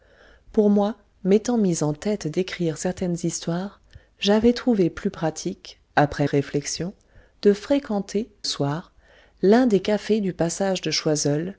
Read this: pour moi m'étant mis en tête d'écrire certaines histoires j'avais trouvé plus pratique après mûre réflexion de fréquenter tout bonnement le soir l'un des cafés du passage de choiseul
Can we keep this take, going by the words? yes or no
no